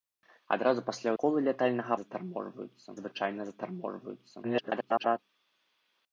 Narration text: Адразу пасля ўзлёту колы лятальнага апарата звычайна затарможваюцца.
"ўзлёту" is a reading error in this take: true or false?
true